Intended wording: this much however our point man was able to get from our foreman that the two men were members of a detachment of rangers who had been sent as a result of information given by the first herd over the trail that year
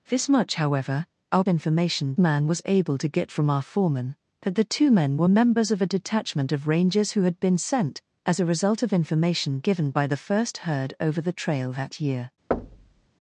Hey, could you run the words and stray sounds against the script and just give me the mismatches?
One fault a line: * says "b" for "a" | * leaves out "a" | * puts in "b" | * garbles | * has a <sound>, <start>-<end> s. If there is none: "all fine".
* says "information" for "point"
* has a thud, 12.5-13.1 s